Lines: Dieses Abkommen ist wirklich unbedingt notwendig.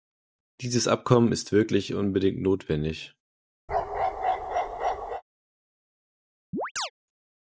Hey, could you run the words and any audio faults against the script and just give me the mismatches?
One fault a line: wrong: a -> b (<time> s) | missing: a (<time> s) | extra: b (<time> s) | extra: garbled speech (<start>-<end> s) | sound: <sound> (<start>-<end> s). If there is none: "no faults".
sound: bark (3.7-5.2 s)
sound: chirp (6.5-6.9 s)